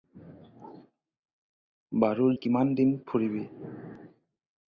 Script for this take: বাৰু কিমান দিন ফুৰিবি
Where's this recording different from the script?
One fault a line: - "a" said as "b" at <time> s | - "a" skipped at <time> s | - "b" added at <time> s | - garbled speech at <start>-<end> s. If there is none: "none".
none